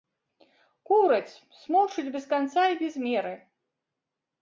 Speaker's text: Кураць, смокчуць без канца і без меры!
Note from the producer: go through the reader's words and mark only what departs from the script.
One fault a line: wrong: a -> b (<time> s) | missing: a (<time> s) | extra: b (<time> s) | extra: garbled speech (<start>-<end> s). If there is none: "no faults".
no faults